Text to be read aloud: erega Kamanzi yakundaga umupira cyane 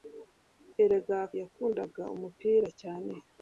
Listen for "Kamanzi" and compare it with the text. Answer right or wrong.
wrong